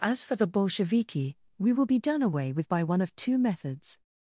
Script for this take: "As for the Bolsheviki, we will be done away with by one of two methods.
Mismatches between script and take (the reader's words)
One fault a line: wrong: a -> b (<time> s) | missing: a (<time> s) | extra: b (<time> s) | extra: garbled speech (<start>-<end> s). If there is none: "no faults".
no faults